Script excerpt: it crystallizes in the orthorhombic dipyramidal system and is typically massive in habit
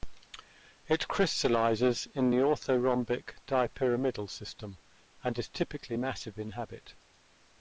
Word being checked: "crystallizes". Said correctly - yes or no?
yes